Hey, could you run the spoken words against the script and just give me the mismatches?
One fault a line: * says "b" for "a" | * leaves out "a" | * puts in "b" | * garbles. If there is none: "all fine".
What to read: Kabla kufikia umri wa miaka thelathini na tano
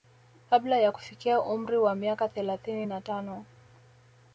* puts in "ya"